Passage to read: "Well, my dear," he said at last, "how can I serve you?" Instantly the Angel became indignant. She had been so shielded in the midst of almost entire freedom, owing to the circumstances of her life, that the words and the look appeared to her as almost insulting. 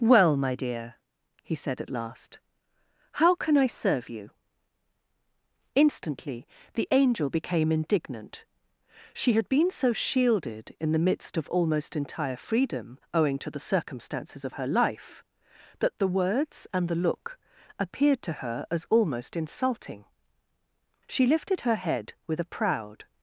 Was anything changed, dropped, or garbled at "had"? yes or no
no